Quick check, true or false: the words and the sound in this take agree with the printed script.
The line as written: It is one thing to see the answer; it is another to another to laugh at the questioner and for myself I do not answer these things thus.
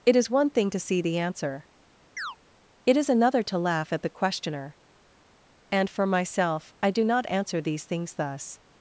false